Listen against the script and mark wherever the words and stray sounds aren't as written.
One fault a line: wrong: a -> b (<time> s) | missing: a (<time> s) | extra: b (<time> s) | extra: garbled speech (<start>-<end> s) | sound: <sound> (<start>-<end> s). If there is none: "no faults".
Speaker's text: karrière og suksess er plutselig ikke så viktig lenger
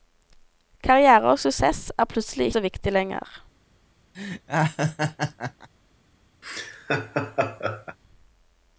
missing: ikke (2.5 s)
sound: laugh (4.1-5.7 s)
sound: laugh (6.4-8.0 s)